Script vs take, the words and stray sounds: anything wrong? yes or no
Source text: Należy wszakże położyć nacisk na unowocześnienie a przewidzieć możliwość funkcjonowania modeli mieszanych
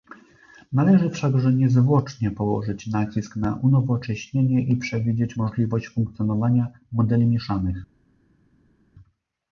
yes